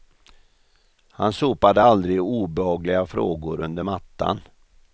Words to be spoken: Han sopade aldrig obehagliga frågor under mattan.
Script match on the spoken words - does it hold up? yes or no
yes